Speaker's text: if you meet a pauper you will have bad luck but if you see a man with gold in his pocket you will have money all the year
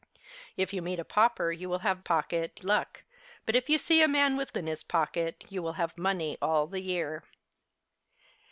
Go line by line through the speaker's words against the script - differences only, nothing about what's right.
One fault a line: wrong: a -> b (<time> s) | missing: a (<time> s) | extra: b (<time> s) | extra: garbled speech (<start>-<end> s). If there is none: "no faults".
wrong: bad -> pocket (2.0 s)
missing: gold (4.5 s)